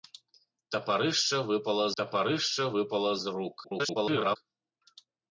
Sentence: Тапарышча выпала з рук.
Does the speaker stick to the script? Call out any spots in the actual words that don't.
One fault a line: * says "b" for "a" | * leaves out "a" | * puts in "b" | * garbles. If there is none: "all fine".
* puts in "тапарышча выпала"
* garbles